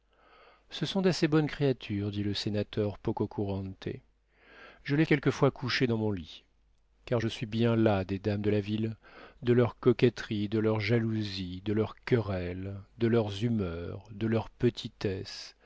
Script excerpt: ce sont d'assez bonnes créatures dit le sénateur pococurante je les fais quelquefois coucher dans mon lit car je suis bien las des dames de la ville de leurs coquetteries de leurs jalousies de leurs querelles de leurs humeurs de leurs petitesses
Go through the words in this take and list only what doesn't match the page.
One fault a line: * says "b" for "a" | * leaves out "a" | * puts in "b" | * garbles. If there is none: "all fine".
* leaves out "fais"